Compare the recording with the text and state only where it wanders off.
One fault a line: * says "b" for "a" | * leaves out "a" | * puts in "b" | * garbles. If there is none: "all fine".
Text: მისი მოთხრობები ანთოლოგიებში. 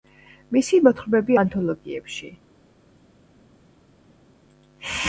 all fine